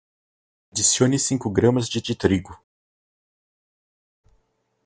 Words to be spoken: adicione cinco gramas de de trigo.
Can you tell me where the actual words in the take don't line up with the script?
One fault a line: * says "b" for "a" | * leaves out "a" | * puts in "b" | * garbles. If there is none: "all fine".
all fine